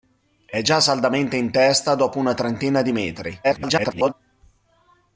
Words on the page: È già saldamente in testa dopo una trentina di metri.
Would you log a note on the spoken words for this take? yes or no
yes